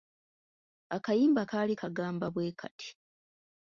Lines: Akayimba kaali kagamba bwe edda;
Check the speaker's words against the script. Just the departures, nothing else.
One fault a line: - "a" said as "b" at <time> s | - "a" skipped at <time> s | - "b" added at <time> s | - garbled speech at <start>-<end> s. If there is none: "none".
- "edda" said as "kati" at 2.6 s